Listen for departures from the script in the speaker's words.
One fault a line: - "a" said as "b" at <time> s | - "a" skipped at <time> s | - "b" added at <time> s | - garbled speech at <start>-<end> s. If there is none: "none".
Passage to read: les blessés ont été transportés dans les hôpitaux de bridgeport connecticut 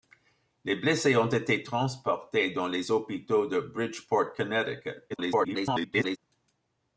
- garbled speech at 5.1-6.2 s